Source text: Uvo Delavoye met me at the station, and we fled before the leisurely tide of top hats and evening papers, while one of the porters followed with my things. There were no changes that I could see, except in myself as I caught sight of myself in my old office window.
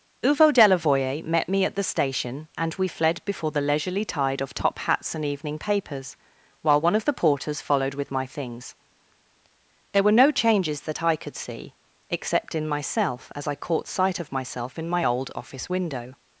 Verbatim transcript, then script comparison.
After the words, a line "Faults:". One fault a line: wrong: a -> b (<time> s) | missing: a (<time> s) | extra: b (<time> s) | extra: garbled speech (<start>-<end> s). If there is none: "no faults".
Uvo Delavoye met me at the station, and we fled before the leisurely tide of top hats and evening papers, while one of the porters followed with my things. There were no changes that I could see, except in myself as I caught sight of myself in my old office window.
Faults:
no faults